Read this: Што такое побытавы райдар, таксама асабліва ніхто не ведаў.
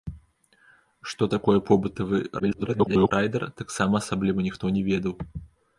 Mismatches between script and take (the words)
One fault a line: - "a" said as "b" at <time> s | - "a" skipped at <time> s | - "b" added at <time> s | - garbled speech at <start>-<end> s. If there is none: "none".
- garbled speech at 2.4-3.1 s